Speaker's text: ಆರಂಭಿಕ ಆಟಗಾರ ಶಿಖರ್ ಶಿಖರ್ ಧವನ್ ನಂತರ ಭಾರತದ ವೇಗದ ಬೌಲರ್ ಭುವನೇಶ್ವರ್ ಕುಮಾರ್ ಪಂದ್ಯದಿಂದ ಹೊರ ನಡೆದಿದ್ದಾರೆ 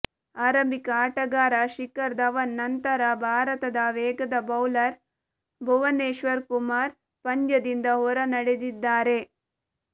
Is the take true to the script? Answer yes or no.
no